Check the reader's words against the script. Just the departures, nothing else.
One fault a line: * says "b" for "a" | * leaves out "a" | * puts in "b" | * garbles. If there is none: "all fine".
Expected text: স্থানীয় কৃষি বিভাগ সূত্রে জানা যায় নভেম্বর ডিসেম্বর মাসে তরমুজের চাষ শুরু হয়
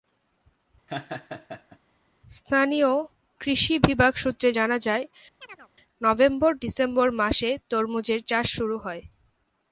all fine